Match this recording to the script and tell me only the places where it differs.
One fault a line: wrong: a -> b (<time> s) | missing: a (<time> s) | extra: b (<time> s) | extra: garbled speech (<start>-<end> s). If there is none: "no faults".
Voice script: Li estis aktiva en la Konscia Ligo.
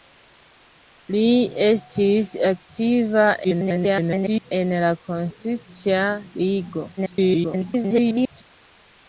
extra: garbled speech (3.4-4.5 s)
extra: garbled speech (7.0-8.4 s)